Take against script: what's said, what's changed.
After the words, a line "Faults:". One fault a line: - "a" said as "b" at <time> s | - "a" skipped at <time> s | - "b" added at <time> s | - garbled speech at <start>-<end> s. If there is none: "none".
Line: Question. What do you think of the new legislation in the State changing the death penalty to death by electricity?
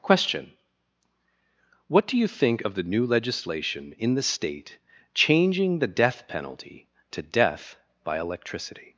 Question. What do you think of the new legislation in the State changing the death penalty to death by electricity?
Faults:
none